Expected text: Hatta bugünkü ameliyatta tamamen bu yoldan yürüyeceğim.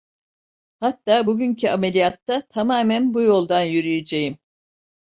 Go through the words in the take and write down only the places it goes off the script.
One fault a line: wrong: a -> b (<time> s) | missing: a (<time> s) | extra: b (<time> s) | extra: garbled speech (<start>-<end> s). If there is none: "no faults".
no faults